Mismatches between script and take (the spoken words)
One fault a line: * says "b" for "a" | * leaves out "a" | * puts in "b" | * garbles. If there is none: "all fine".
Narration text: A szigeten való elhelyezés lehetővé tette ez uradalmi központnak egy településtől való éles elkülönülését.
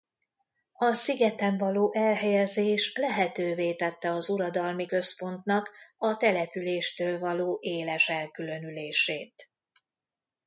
* says "az" for "ez"
* says "a" for "egy"